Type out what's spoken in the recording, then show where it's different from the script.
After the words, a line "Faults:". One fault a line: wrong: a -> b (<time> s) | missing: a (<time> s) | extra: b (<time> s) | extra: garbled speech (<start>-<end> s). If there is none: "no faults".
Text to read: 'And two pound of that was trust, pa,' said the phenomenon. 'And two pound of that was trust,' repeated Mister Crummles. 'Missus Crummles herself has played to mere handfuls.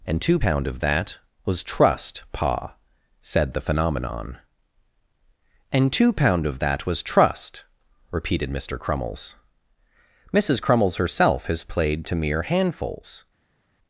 'And two pound of that was trust, pa,' said the phenomenon. 'And two pound of that was trust,' repeated Mister Crummles. 'Missus Crummles herself has played to mere handfuls.
Faults:
no faults